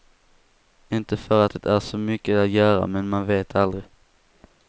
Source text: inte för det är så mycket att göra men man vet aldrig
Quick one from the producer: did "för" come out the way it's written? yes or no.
yes